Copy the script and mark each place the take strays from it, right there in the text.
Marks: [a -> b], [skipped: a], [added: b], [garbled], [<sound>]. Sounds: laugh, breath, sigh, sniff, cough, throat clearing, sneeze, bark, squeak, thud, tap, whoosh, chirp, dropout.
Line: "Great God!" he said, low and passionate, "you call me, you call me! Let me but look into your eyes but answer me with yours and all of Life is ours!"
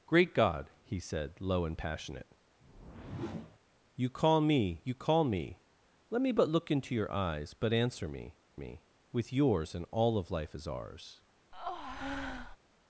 "Great God!" he said, low and passionate, [whoosh] "you call me, you call me! Let me but look into your eyes but answer me [added: me] with yours and all of Life is ours!" [breath]